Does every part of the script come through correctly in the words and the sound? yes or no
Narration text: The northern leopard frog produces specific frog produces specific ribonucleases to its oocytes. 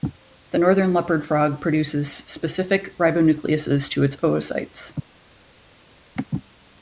no